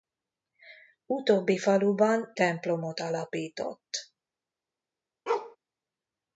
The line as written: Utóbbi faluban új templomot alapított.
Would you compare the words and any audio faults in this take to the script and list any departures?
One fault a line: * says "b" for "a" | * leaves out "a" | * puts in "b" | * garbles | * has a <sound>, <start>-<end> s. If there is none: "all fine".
* leaves out "új"
* has a bark, 5.3-5.6 s